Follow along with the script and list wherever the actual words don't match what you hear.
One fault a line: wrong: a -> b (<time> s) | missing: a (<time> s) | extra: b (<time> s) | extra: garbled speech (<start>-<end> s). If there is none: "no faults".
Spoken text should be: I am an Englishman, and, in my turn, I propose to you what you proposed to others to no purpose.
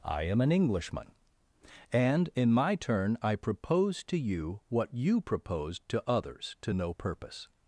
no faults